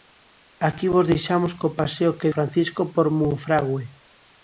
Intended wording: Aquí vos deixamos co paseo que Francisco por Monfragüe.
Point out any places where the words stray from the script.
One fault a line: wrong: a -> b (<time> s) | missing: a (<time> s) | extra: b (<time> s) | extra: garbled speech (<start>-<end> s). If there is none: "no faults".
no faults